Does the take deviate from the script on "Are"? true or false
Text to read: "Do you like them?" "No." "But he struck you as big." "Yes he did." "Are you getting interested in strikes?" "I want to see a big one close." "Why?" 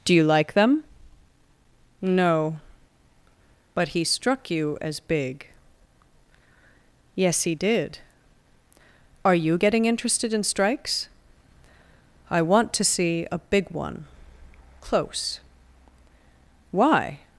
false